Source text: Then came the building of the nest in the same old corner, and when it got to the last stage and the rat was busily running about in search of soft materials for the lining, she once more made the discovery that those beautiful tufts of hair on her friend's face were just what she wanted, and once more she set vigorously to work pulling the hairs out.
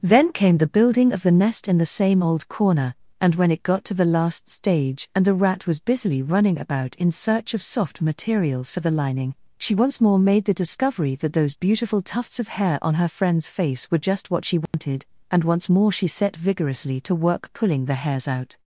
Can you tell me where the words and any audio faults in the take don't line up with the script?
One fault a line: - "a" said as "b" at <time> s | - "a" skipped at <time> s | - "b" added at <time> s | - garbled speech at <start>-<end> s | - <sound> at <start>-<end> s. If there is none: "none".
- dropout at 14.7-14.7 s